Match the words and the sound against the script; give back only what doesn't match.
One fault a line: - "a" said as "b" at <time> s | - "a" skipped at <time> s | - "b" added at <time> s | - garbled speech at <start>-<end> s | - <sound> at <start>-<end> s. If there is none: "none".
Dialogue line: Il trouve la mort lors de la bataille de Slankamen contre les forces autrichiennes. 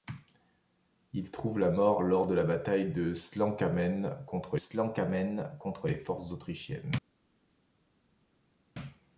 - "Slankamen contre" added at 4.5 s